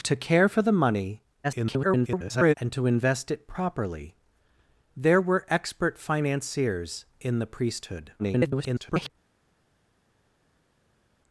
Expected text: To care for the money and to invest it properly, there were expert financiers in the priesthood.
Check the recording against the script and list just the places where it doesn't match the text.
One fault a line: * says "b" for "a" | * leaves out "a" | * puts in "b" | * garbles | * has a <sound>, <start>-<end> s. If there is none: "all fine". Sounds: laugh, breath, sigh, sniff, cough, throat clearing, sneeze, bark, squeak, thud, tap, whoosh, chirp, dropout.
* garbles
* garbles